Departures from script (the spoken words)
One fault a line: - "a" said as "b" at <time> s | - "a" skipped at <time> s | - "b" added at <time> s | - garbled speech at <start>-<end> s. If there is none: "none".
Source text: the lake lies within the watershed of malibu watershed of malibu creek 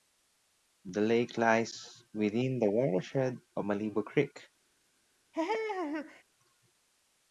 - "watershed of malibu" skipped at 4.1 s